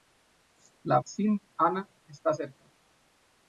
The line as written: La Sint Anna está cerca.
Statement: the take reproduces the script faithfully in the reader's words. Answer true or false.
true